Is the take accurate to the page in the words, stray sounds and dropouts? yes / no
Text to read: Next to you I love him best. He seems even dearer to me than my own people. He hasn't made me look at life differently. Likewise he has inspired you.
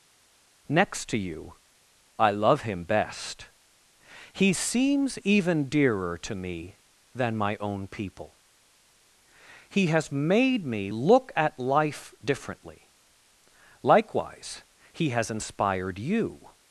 no